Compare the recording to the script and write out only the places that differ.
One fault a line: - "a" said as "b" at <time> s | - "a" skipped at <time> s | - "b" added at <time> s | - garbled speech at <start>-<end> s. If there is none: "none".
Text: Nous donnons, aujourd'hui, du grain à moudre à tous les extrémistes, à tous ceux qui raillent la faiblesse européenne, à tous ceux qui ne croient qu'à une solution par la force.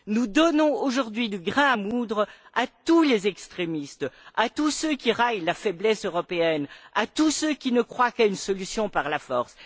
none